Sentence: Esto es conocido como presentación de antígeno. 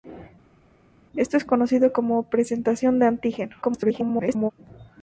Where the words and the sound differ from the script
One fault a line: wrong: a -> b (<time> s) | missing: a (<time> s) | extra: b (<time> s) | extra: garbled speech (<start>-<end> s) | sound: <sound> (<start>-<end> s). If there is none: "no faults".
extra: garbled speech (3.6-4.5 s)